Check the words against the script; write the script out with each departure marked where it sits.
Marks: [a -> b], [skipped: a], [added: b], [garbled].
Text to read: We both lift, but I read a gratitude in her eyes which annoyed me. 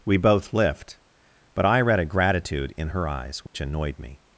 We both lift, but I read a gratitude in her eyes which annoyed me.